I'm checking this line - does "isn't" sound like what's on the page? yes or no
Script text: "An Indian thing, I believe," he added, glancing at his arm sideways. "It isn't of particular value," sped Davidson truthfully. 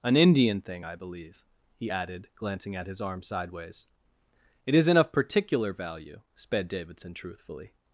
yes